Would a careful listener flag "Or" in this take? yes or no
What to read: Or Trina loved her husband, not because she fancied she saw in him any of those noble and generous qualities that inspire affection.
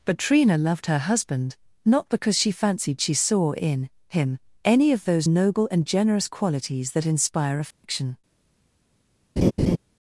yes